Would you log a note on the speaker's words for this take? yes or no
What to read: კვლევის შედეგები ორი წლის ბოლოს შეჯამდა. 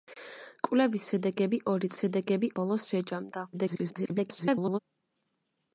yes